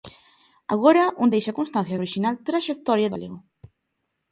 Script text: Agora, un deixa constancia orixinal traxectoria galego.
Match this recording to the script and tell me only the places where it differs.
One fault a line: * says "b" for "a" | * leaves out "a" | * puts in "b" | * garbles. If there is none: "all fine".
all fine